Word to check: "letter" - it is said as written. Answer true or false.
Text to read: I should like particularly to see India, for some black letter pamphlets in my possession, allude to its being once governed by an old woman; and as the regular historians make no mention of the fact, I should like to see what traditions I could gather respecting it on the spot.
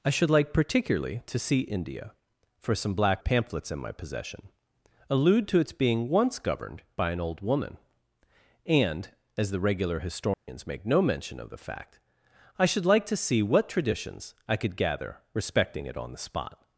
false